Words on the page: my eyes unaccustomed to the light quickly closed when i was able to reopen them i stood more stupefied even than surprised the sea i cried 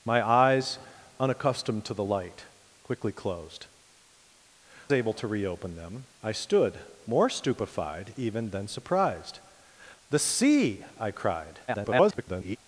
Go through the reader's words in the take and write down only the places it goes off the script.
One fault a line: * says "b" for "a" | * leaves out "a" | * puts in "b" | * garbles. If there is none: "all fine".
* leaves out "when i was"
* garbles